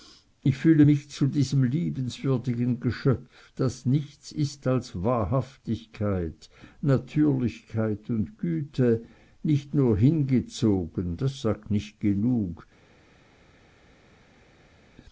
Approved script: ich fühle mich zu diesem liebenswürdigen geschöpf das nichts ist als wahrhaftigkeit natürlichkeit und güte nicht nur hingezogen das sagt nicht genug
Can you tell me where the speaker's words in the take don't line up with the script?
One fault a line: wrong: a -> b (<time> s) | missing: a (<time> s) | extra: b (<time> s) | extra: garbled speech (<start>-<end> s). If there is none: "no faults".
no faults